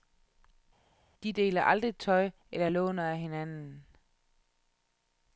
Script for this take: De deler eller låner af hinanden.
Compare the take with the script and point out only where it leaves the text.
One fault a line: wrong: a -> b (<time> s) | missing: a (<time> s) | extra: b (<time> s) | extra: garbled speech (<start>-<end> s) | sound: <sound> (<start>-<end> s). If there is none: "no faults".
extra: aldrig tøj (1.6 s)